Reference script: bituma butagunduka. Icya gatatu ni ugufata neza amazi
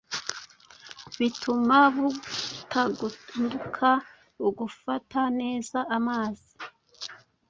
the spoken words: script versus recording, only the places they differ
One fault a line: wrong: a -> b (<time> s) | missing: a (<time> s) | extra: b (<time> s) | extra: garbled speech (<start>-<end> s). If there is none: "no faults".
missing: Icya gatatu ni (3.9 s)